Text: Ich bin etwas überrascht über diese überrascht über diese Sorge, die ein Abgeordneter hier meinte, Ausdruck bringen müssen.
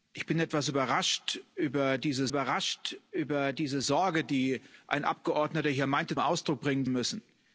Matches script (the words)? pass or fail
pass